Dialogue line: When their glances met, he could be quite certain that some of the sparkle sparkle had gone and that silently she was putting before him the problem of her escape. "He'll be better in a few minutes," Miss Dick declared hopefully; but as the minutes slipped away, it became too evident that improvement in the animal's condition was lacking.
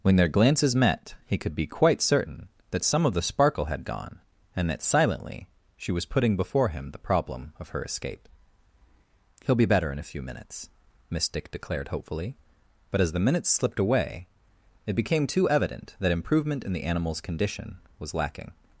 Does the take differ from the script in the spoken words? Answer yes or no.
yes